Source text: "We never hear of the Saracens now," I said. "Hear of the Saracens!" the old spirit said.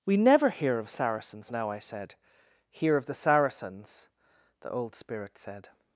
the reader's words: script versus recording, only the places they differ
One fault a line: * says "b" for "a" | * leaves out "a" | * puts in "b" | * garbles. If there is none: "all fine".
* leaves out "the"